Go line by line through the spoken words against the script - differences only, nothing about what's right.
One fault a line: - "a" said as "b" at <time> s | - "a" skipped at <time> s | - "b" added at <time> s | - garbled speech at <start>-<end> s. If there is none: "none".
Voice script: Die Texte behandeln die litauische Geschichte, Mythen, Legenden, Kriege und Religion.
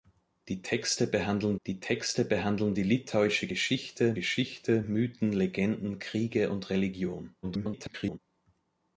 - "Texte behandeln die" added at 1.8 s
- "Geschichte" added at 4.1 s
- garbled speech at 7.4-8.2 s